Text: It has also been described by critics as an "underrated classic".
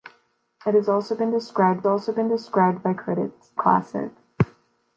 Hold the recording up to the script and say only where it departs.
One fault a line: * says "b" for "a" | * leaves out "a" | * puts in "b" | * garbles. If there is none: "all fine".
* says "also been described by critics" for "by critics as an underrated"